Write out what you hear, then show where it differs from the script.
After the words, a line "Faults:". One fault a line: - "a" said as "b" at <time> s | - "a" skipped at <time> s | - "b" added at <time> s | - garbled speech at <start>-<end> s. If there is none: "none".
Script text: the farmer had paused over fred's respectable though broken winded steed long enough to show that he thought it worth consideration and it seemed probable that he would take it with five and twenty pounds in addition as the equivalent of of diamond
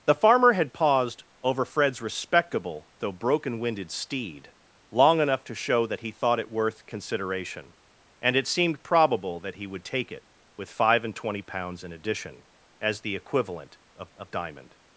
the farmer had paused over fred's respectable though broken winded steed long enough to show that he thought it worth consideration and it seemed probable that he would take it with five and twenty pounds in addition as the equivalent of of diamond
Faults:
none